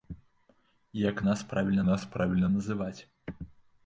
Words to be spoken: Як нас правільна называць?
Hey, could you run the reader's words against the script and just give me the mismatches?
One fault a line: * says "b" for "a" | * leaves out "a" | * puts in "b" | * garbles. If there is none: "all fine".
* puts in "нас правільна"